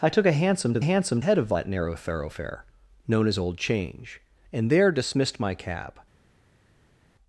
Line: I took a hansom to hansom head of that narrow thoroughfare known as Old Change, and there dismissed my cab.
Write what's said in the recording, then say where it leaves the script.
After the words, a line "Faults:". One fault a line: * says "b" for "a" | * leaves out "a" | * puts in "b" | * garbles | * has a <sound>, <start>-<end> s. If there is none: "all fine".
I took a hansom to hansom head of that narrow thoroughfare known as Old Change, and there dismissed my cab.
Faults:
all fine